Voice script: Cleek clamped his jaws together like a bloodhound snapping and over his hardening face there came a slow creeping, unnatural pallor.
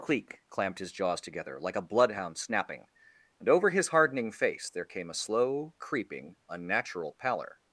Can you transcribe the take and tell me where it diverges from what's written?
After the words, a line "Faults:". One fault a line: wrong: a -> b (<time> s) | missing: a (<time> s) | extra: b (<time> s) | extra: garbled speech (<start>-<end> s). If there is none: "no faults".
Cleek clamped his jaws together like a bloodhound snapping and over his hardening face there came a slow creeping, unnatural pallor.
Faults:
no faults